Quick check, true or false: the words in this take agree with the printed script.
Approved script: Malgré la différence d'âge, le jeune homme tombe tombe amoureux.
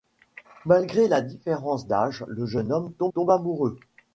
true